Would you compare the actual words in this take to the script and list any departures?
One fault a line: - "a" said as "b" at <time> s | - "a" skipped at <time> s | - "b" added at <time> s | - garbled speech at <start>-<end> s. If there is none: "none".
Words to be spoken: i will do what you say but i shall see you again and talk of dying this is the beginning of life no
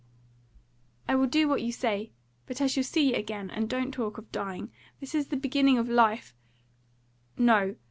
- "don't" added at 3.7 s